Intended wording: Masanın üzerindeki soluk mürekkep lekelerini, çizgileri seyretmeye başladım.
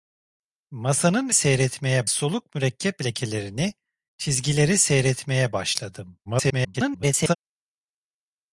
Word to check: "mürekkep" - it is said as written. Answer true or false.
true